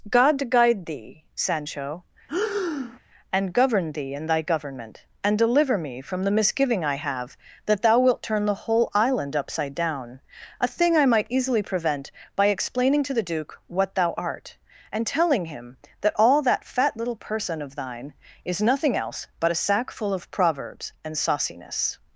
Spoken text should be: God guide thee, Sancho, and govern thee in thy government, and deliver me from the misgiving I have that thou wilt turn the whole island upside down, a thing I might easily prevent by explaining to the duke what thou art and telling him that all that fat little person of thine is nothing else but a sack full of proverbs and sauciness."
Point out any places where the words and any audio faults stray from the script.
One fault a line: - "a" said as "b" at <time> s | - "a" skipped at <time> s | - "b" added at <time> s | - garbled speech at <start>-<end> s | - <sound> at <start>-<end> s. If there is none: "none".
- breath at 2.3-3.0 s